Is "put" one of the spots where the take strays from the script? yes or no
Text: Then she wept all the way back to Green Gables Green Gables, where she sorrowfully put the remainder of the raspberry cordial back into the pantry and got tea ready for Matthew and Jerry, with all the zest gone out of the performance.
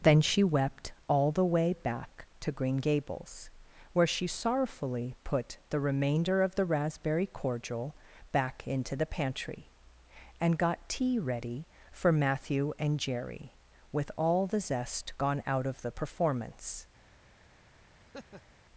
no